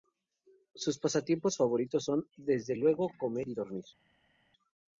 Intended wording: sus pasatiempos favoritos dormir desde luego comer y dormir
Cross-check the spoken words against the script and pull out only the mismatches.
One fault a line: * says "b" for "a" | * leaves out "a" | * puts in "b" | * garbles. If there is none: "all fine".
* says "son" for "dormir"